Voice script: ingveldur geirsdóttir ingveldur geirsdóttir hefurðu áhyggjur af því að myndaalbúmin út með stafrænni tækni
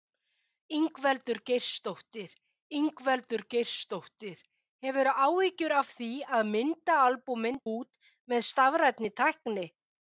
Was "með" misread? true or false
false